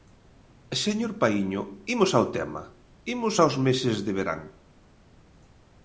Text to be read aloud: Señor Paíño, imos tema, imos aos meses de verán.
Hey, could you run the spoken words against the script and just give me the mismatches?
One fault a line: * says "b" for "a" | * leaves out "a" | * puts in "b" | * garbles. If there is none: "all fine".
* puts in "ao"